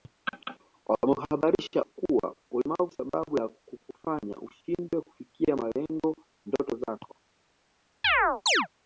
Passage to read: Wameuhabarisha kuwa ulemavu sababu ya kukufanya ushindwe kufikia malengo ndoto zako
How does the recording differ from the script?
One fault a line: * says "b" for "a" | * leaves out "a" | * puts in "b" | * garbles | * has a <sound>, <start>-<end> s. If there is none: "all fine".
* has a chirp, 8.0-8.7 s